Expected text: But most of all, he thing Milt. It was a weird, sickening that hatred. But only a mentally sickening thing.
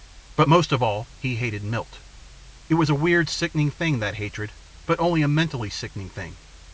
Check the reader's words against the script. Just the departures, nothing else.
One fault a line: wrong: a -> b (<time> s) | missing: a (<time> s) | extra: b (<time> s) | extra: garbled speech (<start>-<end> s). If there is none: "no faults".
wrong: thing -> hated (1.3 s)
extra: thing (3.7 s)